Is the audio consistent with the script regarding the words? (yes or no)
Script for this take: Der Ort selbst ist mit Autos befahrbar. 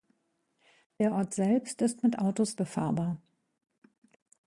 yes